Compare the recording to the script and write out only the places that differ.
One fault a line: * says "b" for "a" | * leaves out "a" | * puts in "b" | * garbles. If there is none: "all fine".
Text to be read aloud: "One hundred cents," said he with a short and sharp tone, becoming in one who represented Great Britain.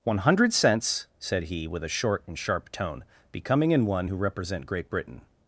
* says "represent" for "represented"